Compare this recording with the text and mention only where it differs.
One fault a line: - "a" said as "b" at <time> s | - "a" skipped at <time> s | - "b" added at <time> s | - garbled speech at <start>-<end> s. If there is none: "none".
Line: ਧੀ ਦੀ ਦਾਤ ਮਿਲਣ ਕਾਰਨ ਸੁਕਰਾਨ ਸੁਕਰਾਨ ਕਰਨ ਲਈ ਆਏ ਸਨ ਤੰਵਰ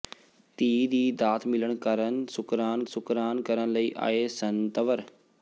none